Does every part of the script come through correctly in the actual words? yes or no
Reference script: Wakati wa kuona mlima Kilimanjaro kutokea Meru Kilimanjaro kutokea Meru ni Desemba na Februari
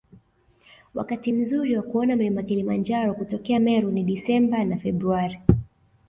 no